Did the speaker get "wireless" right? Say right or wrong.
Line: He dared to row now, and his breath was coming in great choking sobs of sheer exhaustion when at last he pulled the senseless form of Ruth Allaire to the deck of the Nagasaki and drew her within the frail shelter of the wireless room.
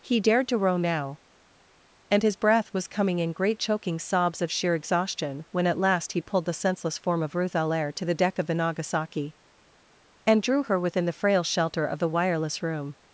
right